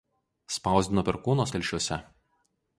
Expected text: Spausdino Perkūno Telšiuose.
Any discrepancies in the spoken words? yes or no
no